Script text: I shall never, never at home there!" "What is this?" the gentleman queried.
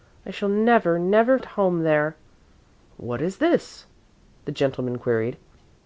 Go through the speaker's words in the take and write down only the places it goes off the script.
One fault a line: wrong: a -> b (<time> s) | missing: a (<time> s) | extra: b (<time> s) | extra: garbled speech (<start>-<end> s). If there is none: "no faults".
no faults